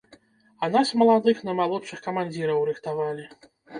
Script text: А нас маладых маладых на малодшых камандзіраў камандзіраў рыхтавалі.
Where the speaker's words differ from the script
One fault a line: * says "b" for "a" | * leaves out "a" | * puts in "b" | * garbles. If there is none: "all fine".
* leaves out "маладых"
* leaves out "камандзіраў"